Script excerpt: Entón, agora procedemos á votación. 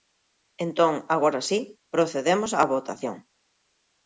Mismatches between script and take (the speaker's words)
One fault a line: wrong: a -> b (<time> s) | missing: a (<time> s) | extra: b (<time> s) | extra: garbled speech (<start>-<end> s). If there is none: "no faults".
extra: si (1.5 s)